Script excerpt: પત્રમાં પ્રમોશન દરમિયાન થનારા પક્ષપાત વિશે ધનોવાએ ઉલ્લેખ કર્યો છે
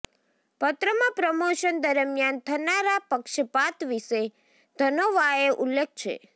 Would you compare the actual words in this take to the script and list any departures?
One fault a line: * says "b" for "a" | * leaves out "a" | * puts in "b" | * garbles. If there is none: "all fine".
* leaves out "કર્યો"